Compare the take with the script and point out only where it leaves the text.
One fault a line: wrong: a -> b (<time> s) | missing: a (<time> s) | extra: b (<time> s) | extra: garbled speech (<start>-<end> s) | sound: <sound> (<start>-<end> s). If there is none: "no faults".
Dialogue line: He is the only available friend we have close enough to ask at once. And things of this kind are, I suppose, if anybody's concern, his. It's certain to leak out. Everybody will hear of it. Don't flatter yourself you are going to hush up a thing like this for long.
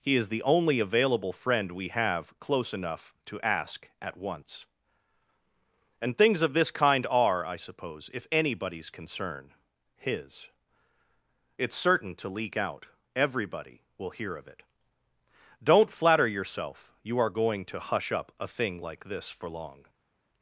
no faults